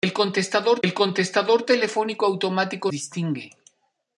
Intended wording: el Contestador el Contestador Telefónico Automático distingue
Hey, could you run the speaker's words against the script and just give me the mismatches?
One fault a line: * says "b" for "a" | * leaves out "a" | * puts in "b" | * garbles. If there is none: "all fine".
all fine